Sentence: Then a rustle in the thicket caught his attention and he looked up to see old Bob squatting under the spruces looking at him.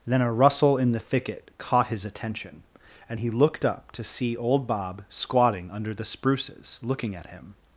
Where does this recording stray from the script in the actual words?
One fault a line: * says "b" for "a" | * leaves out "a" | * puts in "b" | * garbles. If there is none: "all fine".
all fine